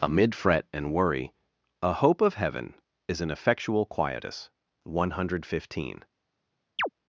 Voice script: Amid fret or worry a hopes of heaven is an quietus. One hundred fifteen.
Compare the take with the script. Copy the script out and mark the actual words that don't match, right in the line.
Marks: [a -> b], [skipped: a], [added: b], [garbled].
Amid fret [or -> and] worry a [hopes -> hope] of heaven is an [added: effectual] quietus. One hundred fifteen.